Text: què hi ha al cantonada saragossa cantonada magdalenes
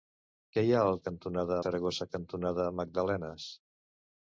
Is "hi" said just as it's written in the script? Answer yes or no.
yes